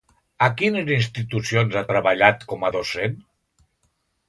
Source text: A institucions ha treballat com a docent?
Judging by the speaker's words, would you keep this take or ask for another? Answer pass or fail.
fail